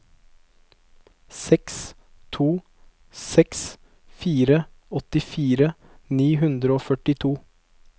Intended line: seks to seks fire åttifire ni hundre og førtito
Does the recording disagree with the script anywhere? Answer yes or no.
no